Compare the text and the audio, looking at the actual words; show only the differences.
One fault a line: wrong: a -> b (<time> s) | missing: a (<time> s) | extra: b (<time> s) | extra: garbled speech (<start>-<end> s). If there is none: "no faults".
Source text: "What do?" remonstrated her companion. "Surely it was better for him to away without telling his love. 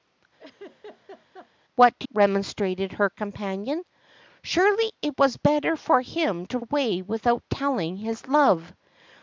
no faults